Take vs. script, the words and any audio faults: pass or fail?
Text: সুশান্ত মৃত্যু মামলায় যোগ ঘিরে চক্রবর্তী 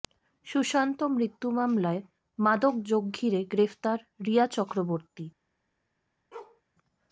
fail